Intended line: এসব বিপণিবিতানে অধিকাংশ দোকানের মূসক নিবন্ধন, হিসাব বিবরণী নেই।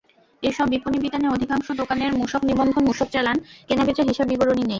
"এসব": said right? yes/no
yes